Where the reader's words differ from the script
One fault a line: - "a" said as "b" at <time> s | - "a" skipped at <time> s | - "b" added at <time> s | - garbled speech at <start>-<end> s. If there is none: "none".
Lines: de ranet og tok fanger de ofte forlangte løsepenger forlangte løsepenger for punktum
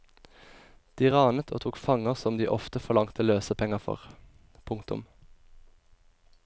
- "som" added at 2.2 s
- "forlangte løsepenger" skipped at 3.8 s